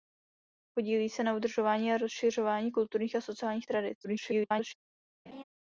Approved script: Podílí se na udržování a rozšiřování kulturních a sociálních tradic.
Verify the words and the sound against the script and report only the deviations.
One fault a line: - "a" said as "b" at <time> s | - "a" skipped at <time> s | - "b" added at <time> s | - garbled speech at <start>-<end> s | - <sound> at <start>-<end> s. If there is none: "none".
- garbled speech at 4.0-4.7 s
- laugh at 5.3-5.4 s